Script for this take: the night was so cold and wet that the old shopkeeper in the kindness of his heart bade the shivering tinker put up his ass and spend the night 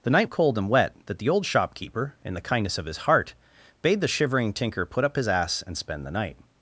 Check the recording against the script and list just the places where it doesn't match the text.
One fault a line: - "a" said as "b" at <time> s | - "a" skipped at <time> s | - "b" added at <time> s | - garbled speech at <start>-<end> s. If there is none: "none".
- "was so" skipped at 0.3 s